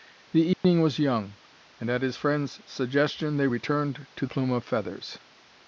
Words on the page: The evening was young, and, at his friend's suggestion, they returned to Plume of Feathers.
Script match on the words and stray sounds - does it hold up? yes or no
no